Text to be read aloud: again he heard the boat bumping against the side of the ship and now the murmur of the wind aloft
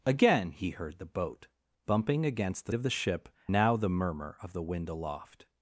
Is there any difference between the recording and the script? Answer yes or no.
yes